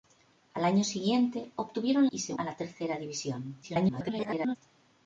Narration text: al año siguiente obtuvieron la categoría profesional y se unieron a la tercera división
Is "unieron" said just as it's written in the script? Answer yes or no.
no